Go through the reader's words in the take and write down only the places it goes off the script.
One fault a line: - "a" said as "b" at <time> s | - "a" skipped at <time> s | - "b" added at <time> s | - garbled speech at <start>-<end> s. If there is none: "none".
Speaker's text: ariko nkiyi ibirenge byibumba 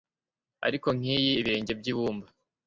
none